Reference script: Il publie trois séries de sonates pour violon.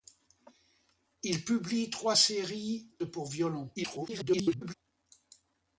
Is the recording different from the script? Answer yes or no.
yes